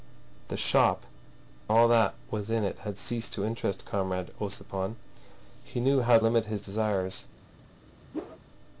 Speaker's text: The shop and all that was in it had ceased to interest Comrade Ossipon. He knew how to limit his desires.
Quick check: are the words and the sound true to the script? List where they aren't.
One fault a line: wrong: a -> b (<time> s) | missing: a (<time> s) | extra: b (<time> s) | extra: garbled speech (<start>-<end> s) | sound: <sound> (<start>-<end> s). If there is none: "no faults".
missing: and (1.1 s)
missing: to (6.2 s)
sound: whoosh (8.1-8.4 s)